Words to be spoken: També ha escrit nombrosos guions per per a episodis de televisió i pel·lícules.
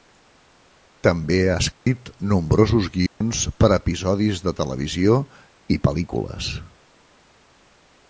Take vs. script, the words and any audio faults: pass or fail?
fail